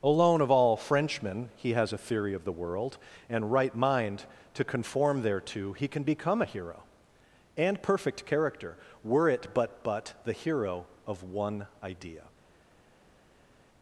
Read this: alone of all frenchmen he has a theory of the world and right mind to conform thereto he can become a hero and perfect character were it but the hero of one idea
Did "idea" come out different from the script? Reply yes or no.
no